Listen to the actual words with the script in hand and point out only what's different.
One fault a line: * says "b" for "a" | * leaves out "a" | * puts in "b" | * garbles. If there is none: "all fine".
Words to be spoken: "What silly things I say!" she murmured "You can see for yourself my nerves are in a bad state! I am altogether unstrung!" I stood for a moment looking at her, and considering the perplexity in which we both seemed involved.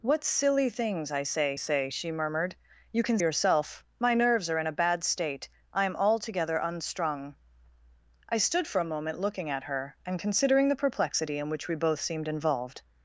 * puts in "say"
* leaves out "see for"